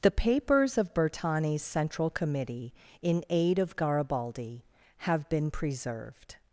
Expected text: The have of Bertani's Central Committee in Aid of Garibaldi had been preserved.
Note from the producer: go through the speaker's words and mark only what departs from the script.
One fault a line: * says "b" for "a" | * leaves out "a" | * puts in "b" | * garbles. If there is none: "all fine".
* says "papers" for "have"
* says "have" for "had"